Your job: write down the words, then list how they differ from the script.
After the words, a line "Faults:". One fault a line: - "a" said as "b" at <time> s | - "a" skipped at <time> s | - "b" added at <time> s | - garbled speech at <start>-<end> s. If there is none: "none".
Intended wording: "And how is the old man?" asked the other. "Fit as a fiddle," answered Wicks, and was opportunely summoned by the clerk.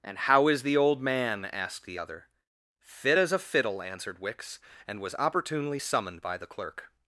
"And how is the old man?" asked the other. "Fit as a fiddle," answered Wicks, and was opportunely summoned by the clerk.
Faults:
none